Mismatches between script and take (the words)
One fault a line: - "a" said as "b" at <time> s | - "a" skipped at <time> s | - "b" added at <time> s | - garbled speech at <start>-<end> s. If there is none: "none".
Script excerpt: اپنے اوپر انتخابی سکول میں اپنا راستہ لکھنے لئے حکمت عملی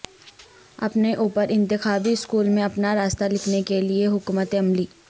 - "کے" added at 3.6 s